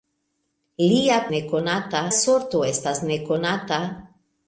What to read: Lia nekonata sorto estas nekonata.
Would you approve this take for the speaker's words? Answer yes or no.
yes